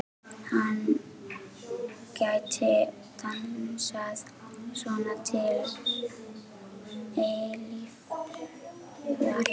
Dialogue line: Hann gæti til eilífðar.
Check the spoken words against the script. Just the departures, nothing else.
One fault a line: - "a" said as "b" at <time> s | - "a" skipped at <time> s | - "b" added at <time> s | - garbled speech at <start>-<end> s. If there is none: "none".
- "dansað svona" added at 3.2 s